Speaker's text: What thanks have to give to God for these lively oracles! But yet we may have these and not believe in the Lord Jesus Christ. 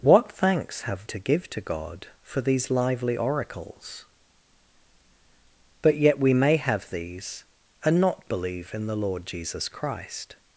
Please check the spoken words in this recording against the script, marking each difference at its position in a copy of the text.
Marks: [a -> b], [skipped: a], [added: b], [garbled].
What thanks have to give to God for these lively oracles! But yet we may have these and not believe in the Lord Jesus Christ.